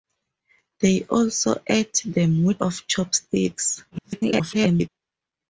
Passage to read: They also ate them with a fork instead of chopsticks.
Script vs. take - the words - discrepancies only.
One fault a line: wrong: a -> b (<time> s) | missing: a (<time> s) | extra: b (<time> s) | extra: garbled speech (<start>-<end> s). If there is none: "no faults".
missing: a fork instead (2.6 s)
extra: garbled speech (3.9-4.9 s)